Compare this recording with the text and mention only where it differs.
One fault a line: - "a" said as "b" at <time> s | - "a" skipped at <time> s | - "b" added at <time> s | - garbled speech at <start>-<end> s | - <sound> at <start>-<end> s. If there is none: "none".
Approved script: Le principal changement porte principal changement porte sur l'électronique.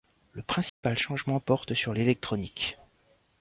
- dropout at 0.7-0.8 s
- "principal changement porte" skipped at 1.7 s